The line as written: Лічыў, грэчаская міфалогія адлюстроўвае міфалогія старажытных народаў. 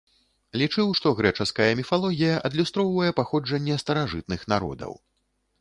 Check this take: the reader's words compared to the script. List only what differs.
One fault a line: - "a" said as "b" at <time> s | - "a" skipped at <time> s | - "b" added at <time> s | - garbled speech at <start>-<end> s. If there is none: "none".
- "што" added at 1.0 s
- "міфалогія" said as "паходжанне" at 3.2 s